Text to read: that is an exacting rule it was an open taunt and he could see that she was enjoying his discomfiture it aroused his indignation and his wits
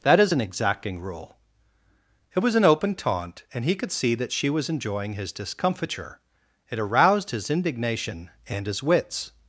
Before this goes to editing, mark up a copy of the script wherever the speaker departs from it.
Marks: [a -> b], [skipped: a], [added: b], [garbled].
that is an exacting rule it was an open taunt and he could see that she was enjoying his discomfiture it aroused his indignation and his wits